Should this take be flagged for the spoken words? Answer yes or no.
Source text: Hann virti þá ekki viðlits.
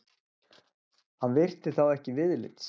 no